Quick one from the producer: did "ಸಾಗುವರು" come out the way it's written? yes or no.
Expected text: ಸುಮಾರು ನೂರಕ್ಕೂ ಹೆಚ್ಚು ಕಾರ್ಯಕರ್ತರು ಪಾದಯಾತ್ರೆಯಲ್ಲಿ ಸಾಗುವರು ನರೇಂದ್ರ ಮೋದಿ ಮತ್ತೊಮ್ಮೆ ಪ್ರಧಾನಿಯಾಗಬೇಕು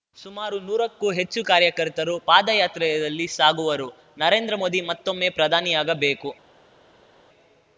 yes